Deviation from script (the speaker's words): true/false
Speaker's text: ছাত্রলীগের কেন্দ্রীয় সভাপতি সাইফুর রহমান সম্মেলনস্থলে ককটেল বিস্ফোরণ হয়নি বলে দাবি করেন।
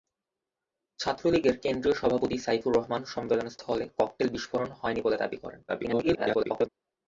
true